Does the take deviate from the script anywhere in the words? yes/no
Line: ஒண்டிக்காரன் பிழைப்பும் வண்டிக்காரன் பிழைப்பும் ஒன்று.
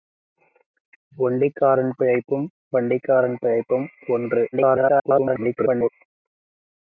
yes